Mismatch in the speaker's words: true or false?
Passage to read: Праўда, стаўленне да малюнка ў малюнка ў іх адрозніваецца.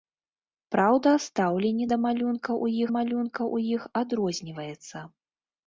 false